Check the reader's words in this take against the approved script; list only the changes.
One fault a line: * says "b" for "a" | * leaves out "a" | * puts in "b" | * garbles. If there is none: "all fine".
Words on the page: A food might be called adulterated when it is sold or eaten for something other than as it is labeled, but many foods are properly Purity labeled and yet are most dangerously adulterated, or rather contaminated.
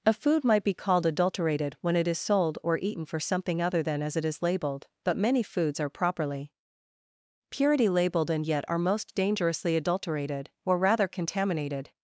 all fine